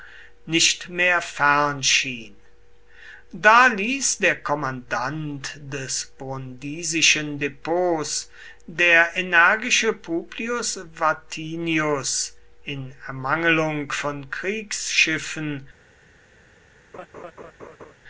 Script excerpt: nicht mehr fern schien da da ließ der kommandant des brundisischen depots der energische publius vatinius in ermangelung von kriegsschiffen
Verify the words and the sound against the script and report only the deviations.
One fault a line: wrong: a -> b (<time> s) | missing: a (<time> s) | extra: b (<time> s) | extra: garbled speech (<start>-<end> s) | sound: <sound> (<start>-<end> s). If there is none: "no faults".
missing: da (3.7 s)
sound: laugh (16.9-17.9 s)